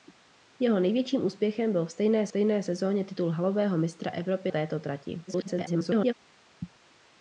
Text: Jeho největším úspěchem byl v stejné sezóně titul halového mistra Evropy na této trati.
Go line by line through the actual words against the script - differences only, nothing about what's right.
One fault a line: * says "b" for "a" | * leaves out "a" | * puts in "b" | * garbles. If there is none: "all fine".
* puts in "stejné"
* leaves out "na"
* garbles